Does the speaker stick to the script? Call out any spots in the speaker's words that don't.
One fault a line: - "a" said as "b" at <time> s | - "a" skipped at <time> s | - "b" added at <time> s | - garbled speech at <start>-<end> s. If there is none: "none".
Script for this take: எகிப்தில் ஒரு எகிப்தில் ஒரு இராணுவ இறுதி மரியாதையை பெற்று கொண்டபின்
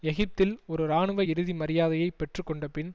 - "எகிப்தில் ஒரு" skipped at 0.8 s